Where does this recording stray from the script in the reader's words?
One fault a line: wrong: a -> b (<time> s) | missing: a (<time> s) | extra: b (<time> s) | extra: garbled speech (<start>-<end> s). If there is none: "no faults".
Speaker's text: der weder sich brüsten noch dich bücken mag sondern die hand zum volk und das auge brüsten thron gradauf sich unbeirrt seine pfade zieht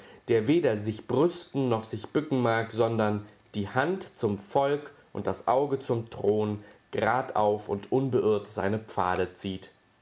wrong: dich -> sich (1.8 s)
wrong: brüsten -> zum (5.8 s)
wrong: sich -> und (7.7 s)